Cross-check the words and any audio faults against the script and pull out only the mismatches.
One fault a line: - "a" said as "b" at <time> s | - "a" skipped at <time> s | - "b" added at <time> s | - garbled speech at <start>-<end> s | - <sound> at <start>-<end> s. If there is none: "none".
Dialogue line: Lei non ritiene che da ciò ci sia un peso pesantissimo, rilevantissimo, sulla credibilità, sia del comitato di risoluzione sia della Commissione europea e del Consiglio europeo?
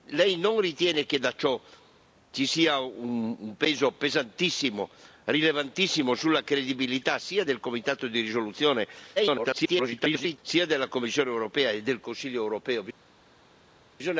- garbled speech at 9.2-10.4 s